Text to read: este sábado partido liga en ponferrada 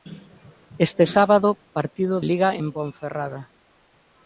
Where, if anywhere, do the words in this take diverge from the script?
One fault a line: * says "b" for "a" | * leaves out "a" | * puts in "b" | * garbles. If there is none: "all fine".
all fine